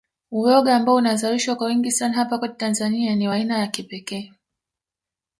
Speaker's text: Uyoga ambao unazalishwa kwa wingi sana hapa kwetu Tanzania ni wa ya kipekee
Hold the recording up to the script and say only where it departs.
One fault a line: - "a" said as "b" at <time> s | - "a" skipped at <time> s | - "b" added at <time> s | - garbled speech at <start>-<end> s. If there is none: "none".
- "aina" added at 3.3 s